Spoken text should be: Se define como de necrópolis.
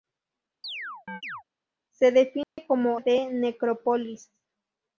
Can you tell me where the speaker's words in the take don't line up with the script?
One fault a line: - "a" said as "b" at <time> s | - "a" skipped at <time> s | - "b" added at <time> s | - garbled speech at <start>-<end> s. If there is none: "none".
none